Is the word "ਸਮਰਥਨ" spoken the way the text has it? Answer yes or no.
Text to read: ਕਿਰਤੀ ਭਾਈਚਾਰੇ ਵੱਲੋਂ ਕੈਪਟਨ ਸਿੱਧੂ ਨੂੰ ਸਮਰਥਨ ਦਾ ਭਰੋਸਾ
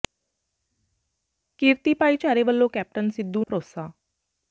no